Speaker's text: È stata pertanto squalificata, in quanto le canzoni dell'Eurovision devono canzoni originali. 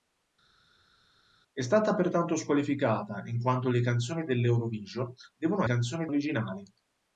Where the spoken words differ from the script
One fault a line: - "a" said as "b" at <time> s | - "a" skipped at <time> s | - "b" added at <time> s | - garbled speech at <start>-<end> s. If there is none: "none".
none